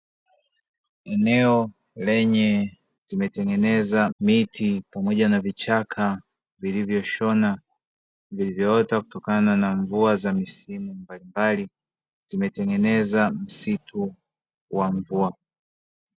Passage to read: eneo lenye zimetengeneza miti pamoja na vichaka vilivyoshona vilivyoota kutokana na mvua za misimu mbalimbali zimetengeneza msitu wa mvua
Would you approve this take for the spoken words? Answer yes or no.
yes